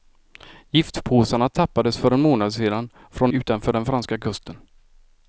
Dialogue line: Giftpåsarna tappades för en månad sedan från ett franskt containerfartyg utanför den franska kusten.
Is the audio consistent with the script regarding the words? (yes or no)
no